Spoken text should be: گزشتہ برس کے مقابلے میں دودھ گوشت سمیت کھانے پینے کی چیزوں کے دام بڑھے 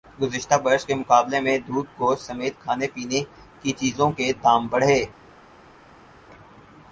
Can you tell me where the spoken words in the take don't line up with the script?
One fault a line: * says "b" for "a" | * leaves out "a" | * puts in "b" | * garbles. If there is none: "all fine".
all fine